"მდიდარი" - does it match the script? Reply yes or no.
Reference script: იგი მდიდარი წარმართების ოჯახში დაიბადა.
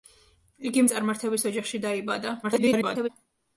no